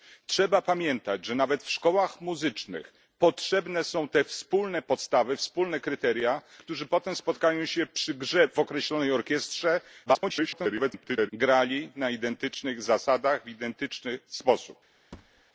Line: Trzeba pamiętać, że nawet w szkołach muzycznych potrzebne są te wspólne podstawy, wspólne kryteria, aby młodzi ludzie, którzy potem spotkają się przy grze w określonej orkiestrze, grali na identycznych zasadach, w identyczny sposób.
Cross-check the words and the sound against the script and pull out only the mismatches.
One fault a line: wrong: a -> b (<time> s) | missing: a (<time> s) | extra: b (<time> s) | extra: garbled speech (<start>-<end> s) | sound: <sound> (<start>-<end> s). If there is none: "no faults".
missing: aby młodzi ludzie (6.4 s)
extra: garbled speech (10.1-11.3 s)
sound: thud (15.1-15.4 s)